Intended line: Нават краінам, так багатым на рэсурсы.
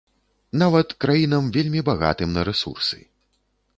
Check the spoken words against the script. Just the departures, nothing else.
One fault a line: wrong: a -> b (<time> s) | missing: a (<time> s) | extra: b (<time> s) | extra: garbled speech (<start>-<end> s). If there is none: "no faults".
wrong: так -> вельмі (1.6 s)